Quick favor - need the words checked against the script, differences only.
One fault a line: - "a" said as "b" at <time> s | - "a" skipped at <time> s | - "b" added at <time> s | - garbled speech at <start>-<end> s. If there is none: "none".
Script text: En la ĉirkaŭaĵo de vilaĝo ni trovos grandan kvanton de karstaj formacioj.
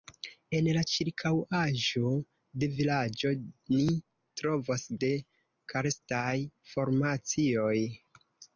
- "grandan kvanton" skipped at 4.9 s